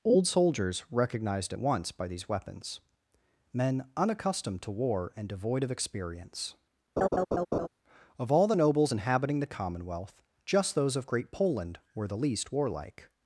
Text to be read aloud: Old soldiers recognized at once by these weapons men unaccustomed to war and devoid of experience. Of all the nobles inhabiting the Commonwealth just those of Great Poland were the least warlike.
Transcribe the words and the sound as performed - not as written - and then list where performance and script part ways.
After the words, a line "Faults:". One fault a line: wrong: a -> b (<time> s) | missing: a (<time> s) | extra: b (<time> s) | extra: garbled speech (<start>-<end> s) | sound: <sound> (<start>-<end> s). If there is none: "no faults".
Old soldiers recognized at once by these weapons men unaccustomed to war and devoid of experience. Of all the nobles inhabiting the Commonwealth just those of Great Poland were the least warlike.
Faults:
sound: laugh (7.0-7.7 s)